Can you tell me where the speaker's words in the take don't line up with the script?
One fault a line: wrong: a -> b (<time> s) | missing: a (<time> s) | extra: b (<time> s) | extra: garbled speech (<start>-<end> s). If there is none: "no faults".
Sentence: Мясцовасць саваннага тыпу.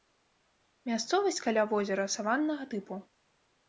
extra: каля возера (1.5 s)